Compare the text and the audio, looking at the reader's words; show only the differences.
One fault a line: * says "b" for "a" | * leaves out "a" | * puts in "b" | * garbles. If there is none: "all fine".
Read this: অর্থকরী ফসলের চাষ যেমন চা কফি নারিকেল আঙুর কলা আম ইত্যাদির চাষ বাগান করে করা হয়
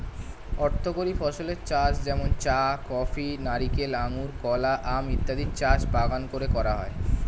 all fine